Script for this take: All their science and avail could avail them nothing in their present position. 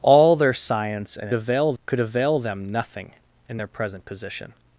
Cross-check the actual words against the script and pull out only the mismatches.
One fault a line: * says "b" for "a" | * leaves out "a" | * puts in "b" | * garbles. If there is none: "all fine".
all fine